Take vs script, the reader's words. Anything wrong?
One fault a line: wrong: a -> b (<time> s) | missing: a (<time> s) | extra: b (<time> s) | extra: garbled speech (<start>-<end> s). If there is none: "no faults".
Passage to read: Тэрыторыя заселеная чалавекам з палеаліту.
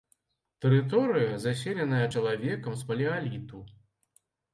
no faults